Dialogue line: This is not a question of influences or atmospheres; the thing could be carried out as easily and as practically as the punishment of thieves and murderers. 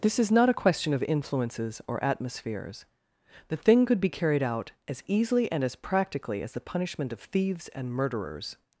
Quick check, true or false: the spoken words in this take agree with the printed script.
true